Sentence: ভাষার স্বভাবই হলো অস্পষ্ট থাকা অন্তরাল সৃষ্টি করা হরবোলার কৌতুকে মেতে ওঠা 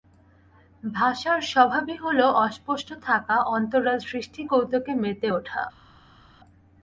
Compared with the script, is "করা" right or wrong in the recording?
wrong